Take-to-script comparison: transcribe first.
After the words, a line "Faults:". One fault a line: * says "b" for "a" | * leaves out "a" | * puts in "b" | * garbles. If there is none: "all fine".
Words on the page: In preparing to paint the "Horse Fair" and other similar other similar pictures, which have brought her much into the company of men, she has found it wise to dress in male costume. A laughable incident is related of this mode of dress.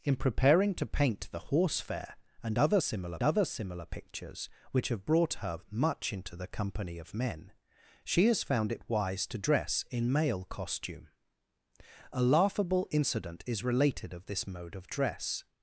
In preparing to paint the "Horse Fair" and other similar other similar pictures, which have brought her much into the company of men, she has found it wise to dress in male costume. A laughable incident is related of this mode of dress.
Faults:
all fine